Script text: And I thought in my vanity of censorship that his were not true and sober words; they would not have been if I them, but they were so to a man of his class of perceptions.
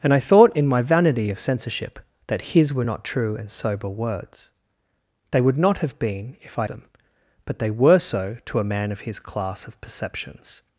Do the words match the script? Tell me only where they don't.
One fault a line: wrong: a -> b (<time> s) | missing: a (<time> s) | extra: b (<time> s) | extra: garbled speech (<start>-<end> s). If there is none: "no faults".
no faults